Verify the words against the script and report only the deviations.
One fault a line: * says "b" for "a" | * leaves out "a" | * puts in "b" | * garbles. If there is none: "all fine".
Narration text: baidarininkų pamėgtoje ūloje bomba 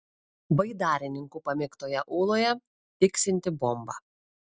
* puts in "tiksinti"